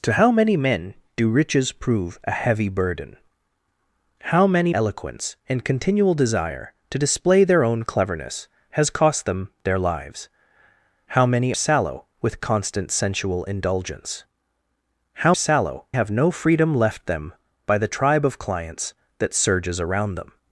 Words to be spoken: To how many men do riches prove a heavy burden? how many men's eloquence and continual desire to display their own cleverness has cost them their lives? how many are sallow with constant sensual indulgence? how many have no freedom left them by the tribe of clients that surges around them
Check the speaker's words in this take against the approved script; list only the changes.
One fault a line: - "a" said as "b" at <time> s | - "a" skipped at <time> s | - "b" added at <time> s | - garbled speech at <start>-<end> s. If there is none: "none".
- "men's" skipped at 4.7 s
- "are" skipped at 11.5 s
- "many" said as "sallow" at 15.3 s